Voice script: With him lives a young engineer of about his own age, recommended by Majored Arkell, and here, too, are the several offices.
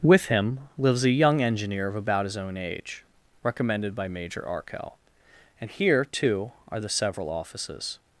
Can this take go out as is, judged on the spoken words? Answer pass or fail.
fail